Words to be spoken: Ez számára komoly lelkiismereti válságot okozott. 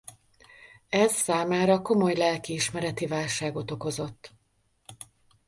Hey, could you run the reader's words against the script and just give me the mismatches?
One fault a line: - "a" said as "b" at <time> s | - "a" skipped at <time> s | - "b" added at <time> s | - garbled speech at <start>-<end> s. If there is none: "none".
none